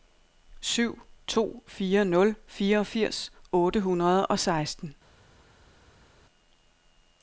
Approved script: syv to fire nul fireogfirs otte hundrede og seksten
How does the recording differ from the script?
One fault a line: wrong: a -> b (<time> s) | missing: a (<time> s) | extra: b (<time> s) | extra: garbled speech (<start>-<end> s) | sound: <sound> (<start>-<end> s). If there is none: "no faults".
no faults